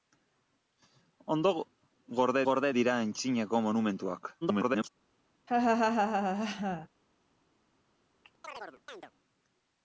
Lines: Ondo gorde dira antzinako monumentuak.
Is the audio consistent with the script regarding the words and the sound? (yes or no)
no